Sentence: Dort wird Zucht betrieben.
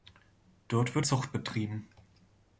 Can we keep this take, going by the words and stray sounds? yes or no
yes